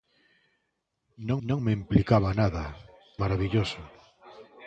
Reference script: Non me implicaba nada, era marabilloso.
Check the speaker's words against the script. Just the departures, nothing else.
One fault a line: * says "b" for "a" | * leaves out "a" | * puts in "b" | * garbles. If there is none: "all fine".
* puts in "non"
* leaves out "era"